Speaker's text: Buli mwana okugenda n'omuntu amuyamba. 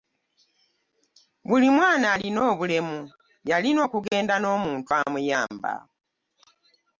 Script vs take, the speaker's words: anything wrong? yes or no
yes